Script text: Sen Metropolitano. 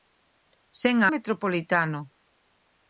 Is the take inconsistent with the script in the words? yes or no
no